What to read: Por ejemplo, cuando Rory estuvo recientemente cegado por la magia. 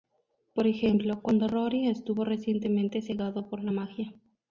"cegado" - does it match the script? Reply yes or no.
yes